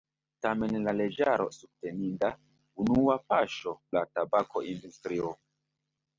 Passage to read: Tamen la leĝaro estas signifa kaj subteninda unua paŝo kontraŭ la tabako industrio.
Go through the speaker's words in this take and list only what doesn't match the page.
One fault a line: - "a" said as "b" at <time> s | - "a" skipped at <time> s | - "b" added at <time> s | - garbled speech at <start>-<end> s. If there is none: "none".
- "estas signifa kaj" skipped at 1.4 s
- "kontraŭ" skipped at 3.8 s